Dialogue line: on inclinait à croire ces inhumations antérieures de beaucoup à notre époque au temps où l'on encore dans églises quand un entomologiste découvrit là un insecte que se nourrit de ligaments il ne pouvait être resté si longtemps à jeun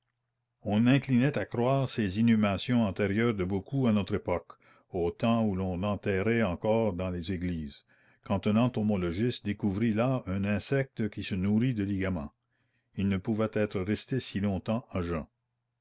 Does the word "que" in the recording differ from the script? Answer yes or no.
yes